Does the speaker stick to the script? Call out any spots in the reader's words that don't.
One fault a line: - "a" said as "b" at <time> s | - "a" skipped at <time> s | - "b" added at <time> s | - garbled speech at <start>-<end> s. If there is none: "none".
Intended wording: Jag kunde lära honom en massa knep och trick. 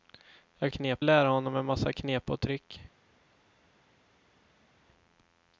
- "kunde" said as "knep" at 0.7 s